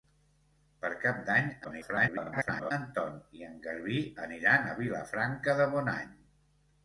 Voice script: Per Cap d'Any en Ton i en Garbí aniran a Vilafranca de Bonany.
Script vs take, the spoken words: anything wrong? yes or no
yes